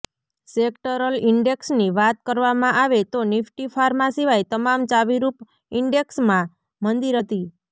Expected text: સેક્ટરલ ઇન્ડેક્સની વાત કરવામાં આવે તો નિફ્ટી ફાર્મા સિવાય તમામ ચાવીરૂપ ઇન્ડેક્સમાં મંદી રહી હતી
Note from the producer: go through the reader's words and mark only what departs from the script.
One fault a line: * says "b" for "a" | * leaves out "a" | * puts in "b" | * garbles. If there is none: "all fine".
* leaves out "રહી"